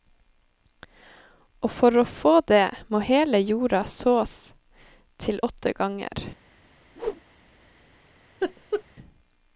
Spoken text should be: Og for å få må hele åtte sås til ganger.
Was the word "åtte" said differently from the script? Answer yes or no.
yes